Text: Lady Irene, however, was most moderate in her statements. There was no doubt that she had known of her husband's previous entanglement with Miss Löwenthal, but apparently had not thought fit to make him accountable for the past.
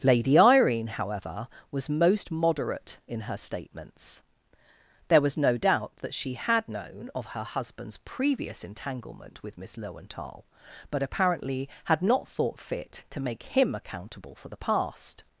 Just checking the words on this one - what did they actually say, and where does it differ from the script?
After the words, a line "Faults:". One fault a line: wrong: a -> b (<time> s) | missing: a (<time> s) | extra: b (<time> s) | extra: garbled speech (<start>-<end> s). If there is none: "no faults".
Lady Irene, however, was most moderate in her statements. There was no doubt that she had known of her husband's previous entanglement with Miss Löwenthal, but apparently had not thought fit to make him accountable for the past.
Faults:
no faults